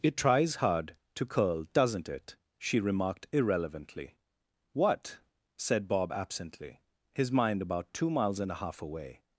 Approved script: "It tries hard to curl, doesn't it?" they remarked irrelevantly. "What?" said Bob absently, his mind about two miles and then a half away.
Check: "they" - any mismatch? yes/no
yes